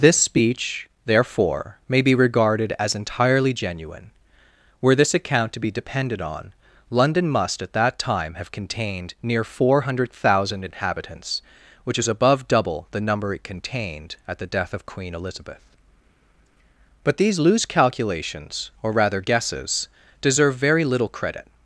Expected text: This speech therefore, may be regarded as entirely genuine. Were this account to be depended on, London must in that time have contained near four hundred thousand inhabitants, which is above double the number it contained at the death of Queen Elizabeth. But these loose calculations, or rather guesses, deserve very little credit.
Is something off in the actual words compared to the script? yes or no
yes